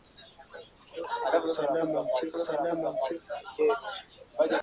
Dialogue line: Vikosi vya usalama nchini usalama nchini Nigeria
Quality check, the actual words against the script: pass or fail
pass